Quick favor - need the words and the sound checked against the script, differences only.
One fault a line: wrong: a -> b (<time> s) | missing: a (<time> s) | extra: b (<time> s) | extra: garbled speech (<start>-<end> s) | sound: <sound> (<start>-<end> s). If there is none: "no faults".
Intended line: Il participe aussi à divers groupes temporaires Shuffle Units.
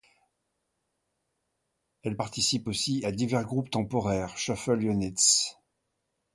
wrong: Il -> Elle (2.0 s)